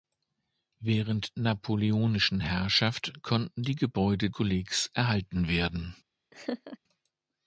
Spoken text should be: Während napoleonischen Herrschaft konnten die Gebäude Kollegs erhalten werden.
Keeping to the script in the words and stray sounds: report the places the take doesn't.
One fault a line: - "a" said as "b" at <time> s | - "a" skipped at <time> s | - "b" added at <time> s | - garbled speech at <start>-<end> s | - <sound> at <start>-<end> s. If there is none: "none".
- laugh at 6.3-6.8 s